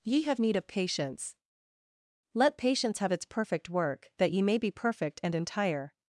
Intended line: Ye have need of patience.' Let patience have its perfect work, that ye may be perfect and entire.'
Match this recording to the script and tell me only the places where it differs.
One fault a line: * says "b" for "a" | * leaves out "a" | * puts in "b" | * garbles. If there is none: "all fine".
all fine